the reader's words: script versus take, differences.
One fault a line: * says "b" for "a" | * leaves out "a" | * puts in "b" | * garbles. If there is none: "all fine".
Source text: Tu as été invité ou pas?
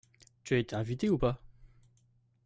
all fine